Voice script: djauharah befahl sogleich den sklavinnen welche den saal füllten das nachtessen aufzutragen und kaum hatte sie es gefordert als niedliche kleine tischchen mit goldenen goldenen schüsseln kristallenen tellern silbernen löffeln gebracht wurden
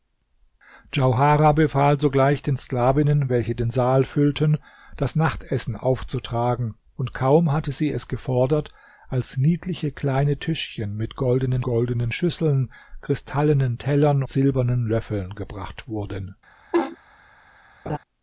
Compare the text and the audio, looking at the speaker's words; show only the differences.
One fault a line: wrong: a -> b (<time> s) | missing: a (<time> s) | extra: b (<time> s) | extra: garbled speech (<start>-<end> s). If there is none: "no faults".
no faults